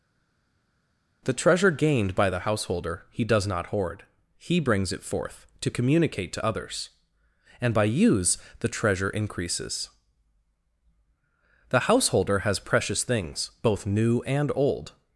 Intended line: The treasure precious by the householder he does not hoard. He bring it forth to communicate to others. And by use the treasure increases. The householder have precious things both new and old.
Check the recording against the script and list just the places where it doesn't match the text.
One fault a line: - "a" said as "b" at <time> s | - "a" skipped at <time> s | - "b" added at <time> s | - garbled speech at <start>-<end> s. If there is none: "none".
- "precious" said as "gained" at 1.7 s
- "bring" said as "brings" at 4.6 s
- "have" said as "has" at 12.4 s